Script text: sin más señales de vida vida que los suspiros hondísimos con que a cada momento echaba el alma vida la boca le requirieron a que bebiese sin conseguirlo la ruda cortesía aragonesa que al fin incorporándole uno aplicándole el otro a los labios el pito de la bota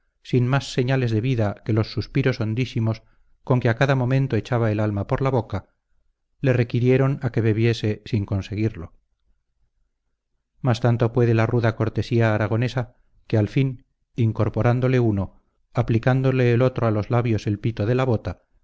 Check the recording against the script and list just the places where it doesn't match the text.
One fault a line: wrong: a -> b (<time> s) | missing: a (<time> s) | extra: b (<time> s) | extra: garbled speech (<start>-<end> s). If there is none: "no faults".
missing: vida (1.6 s)
wrong: vida -> por (5.1 s)
extra: mas tanto puede (10.6 s)